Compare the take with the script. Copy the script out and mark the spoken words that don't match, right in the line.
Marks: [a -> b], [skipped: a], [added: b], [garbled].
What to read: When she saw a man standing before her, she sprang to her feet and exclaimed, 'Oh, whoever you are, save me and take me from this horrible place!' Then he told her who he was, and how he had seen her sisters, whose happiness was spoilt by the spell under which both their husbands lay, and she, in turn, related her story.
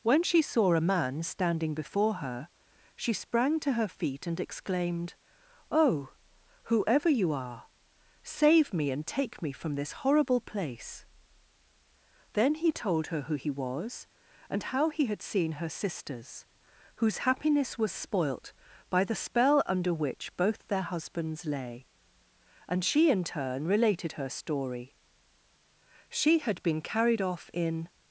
When she saw a man standing before her, she sprang to her feet and exclaimed, 'Oh, whoever you are, save me and take me from this horrible place!' Then he told her who he was, and how he had seen her sisters, whose happiness was spoilt by the spell under which both their husbands lay, and she, in turn, related her story. [added: She had been carried off in]